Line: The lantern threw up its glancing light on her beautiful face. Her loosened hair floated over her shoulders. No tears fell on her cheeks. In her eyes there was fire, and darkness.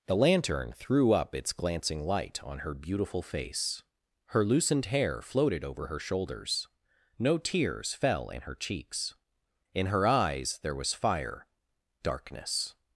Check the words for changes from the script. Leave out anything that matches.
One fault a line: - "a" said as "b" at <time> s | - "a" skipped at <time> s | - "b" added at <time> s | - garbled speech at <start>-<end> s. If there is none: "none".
- "on" said as "in" at 8.3 s
- "and" skipped at 11.5 s